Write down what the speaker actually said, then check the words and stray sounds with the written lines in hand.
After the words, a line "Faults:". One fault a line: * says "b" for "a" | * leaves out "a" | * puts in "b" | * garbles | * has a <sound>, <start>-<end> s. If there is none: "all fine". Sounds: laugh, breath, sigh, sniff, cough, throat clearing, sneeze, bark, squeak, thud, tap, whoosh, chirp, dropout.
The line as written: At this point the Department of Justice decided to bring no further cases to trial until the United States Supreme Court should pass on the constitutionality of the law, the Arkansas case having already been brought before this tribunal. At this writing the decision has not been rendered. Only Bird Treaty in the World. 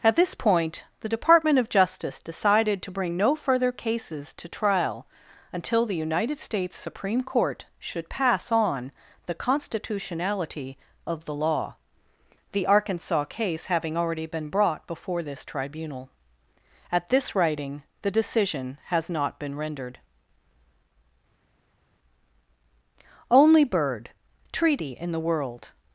At this point the Department of Justice decided to bring no further cases to trial until the United States Supreme Court should pass on the constitutionality of the law, the Arkansas case having already been brought before this tribunal. At this writing the decision has not been rendered. Only Bird Treaty in the World.
Faults:
all fine